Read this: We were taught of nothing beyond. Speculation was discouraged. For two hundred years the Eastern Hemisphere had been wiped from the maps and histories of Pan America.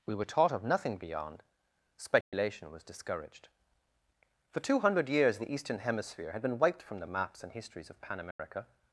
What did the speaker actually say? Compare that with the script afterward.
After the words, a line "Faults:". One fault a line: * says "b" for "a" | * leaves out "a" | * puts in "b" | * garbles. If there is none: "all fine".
We were taught of nothing beyond. Speculation was discouraged. For two hundred years the Eastern Hemisphere had been wiped from the maps and histories of Pan America.
Faults:
all fine